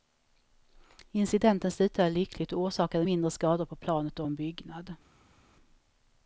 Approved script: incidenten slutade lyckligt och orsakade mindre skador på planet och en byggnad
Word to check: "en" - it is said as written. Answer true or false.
true